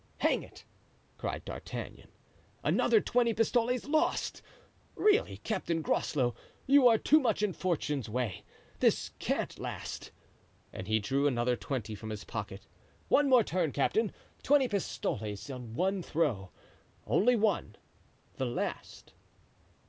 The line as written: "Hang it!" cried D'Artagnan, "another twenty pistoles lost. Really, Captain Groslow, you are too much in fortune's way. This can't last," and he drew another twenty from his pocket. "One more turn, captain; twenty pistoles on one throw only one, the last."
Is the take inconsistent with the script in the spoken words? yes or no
no